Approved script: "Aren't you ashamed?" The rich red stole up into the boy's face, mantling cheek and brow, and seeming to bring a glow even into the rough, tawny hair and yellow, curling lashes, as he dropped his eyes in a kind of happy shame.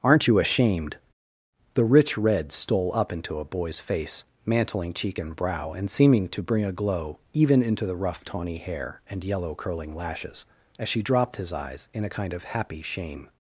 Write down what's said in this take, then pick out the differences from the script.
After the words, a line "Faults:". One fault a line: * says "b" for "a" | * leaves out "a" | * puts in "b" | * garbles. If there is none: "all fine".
"Aren't you ashamed?" The rich red stole up into a boy's face, mantling cheek and brow, and seeming to bring a glow even into the rough, tawny hair and yellow, curling lashes, as she dropped his eyes in a kind of happy shame.
Faults:
* says "a" for "the"
* says "she" for "he"